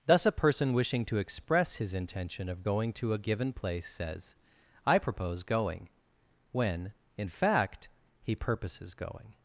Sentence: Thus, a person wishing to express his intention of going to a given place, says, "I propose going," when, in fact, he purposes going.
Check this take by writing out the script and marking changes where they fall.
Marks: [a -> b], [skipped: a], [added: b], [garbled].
Thus, a person wishing to express his intention of going to a given place, says, "I propose going," when, in fact, he purposes going.